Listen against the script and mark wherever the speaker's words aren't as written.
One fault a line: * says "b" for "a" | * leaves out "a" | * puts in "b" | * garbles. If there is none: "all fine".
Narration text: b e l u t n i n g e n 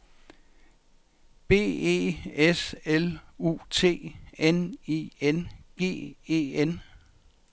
* puts in "s"